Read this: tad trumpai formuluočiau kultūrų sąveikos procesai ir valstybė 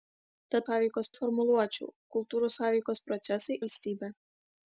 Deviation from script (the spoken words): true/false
true